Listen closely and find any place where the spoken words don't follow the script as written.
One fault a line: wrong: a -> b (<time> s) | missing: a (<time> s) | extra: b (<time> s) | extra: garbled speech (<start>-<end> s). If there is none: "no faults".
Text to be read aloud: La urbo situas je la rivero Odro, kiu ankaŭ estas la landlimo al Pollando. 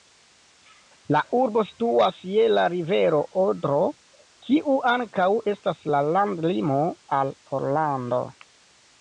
no faults